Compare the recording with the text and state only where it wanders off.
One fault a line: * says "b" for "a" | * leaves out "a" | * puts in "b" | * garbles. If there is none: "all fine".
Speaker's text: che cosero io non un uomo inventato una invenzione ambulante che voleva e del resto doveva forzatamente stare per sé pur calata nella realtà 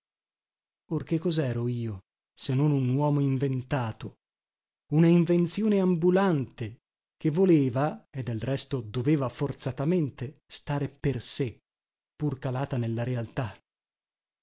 * puts in "se"